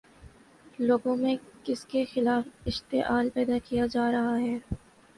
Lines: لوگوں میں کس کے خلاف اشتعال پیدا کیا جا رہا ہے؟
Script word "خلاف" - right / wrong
right